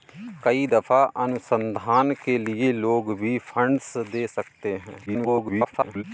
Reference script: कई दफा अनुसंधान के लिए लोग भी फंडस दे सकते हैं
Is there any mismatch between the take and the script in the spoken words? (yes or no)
yes